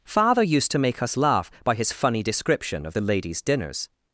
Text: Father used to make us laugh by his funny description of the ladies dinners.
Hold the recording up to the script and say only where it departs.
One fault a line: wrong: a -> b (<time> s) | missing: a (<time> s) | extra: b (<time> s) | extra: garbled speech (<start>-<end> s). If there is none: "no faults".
no faults